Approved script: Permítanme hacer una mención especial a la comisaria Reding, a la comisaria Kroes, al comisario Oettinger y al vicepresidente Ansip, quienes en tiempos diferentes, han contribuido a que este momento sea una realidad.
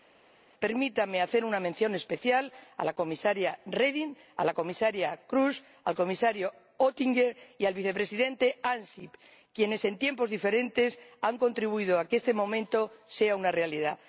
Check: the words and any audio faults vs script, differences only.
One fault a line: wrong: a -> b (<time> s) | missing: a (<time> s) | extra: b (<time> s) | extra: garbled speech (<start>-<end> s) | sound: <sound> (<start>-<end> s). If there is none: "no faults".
no faults